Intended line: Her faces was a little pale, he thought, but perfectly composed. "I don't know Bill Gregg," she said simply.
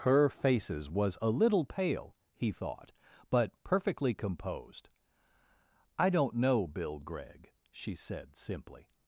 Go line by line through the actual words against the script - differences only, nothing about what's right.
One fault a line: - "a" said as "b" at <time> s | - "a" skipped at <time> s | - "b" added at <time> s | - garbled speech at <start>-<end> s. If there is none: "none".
none